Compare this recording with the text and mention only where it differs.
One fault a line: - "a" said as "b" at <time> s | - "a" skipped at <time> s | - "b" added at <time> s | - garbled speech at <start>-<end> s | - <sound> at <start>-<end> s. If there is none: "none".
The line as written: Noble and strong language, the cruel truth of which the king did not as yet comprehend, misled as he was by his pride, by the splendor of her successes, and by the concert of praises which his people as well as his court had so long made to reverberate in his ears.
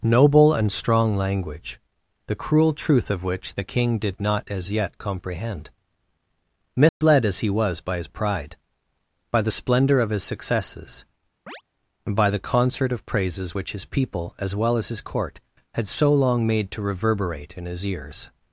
- dropout at 6.9-7.0 s
- "her" said as "his" at 10.1 s
- chirp at 11.5-11.6 s